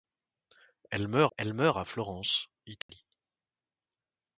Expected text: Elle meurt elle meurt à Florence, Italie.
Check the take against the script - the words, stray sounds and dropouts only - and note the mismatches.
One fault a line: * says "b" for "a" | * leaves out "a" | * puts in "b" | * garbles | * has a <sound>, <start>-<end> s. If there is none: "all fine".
* has a dropout, 2.8-2.9 s